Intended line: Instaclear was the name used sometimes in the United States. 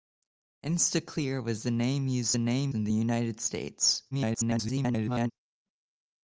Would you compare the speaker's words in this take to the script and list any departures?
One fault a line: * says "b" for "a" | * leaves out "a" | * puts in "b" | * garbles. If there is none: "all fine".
* says "name" for "sometimes"
* garbles